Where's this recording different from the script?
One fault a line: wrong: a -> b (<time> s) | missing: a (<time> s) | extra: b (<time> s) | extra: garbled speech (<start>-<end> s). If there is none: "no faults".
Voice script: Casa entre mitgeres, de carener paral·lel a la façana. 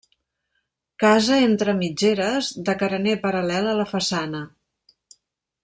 no faults